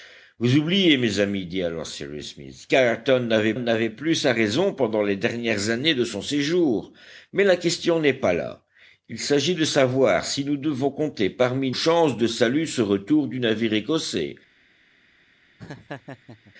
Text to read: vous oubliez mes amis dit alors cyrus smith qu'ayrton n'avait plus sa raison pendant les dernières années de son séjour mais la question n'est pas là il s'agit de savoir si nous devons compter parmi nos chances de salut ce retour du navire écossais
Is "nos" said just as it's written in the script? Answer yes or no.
no